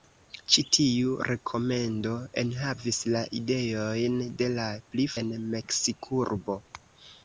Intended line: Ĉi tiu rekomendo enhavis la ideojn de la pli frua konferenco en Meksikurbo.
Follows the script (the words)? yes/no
no